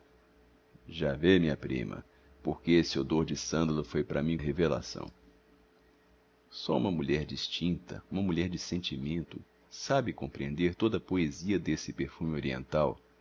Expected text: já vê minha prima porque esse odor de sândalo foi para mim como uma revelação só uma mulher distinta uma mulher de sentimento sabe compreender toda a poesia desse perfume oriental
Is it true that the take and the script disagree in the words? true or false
true